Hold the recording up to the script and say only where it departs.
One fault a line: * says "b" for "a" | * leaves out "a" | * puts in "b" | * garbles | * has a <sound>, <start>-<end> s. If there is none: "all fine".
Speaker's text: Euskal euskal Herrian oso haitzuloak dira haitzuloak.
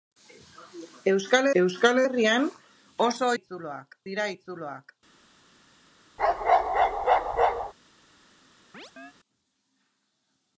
* has a bark, 6.2-7.7 s
* has a chirp, 8.7-9.1 s